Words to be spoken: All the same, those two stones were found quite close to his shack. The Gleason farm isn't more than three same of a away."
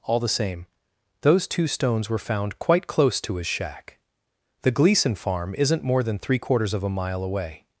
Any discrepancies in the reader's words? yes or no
yes